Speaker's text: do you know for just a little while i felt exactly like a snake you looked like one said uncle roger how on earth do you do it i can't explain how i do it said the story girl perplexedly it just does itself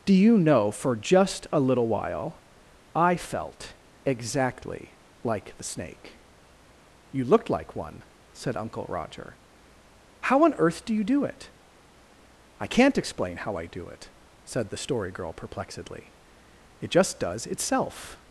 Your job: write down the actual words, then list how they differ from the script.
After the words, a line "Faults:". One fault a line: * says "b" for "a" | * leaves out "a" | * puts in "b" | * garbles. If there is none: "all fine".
do you know for just a little while i felt exactly like the snake you looked like one said uncle roger how on earth do you do it i can't explain how i do it said the story girl perplexedly it just does itself
Faults:
* says "the" for "a"